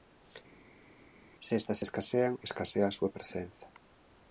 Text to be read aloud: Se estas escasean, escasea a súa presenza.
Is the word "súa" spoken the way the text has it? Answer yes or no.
yes